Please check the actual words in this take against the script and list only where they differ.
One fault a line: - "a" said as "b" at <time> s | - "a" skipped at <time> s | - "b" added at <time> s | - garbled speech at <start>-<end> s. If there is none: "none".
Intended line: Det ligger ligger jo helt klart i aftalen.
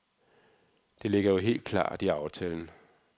- "ligger" skipped at 1.3 s